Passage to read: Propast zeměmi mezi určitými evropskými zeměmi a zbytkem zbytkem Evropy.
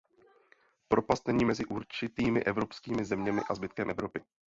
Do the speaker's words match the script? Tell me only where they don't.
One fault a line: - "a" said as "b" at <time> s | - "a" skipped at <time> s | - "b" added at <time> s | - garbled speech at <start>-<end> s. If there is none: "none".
- "zeměmi" said as "není" at 1.3 s
- "zbytkem" skipped at 3.9 s